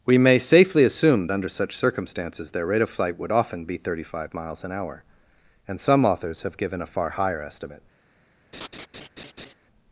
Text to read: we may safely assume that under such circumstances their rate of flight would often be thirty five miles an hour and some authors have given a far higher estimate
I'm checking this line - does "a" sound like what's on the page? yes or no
yes